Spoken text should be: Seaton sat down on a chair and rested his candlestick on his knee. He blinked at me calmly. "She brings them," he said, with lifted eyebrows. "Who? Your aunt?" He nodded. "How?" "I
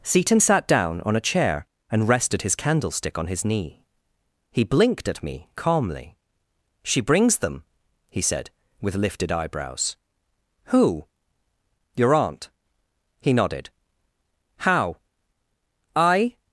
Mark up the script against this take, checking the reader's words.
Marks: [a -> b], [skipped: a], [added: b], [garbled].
Seaton sat down on a chair and rested his candlestick on his knee. He blinked at me calmly. "She brings them," he said, with lifted eyebrows. "Who? Your aunt?" He nodded. "How?" "I